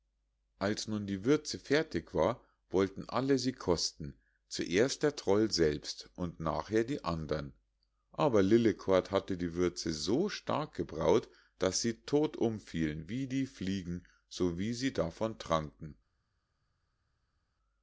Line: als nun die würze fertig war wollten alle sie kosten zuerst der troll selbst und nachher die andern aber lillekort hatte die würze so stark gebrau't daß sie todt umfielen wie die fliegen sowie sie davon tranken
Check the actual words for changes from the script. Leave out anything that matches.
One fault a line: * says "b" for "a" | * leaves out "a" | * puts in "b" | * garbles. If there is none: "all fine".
all fine